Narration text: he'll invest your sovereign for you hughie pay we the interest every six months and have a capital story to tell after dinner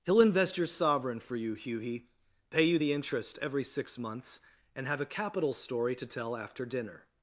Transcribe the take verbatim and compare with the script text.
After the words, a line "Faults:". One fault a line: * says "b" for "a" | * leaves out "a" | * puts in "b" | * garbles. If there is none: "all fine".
he'll invest your sovereign for you hughie pay you the interest every six months and have a capital story to tell after dinner
Faults:
* says "you" for "we"